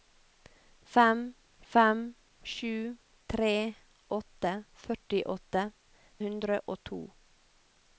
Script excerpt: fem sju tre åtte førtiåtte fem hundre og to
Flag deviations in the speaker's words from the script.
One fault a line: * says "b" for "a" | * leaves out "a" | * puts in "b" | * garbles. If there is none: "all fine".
* puts in "fem"
* leaves out "fem"